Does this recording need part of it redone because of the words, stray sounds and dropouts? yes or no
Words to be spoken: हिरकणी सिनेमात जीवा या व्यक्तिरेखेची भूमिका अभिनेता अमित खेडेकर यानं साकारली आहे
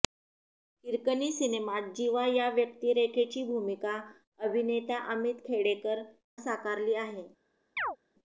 yes